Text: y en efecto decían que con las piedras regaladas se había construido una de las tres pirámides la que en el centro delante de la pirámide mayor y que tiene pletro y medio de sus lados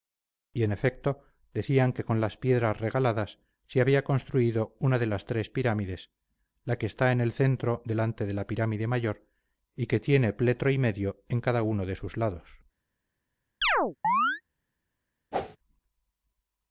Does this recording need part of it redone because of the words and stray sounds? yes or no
yes